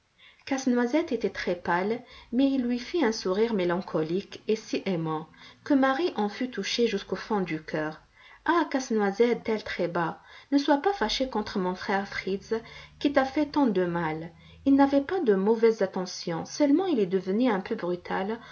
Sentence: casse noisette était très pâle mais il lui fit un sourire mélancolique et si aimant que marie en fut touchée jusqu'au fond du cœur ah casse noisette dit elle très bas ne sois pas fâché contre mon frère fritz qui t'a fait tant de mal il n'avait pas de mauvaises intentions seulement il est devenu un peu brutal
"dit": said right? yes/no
no